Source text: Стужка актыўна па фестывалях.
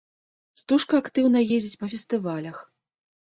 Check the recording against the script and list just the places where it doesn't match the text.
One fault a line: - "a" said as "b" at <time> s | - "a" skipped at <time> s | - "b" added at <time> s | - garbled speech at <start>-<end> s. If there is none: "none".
- "ездзіць" added at 1.6 s